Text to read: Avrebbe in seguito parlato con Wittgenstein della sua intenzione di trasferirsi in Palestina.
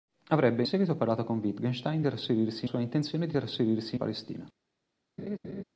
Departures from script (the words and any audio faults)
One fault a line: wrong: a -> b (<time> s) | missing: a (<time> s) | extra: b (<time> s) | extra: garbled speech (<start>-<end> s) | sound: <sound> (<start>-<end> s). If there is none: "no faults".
missing: in (0.6 s)
wrong: della -> trasferirsi (2.0 s)
missing: in (4.0 s)
sound: laugh (5.2-5.6 s)